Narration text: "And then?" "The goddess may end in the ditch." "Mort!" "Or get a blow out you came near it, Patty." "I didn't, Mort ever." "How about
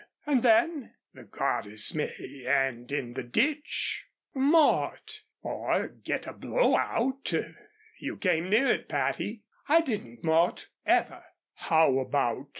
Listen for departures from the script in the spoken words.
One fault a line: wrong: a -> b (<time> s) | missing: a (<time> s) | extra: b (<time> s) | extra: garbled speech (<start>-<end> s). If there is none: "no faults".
no faults